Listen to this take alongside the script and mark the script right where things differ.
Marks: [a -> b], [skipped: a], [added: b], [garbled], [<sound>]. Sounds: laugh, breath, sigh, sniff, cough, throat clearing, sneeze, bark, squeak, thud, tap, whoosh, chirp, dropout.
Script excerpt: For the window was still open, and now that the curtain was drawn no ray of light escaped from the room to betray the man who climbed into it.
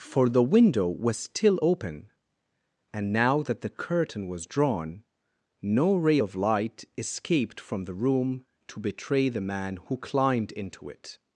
For the window was still open, and now that the curtain was drawn no ray of light escaped from the room to betray the man who climbed into it.